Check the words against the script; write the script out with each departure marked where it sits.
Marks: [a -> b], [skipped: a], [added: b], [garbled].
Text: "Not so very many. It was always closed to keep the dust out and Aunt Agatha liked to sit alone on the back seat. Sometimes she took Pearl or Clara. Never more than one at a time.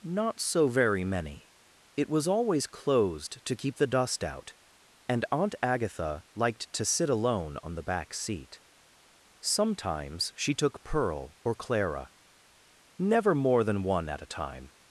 "Not so very many. It was always closed to keep the dust out and Aunt Agatha liked to sit alone on the back seat. Sometimes she took Pearl or Clara. Never more than one at a time.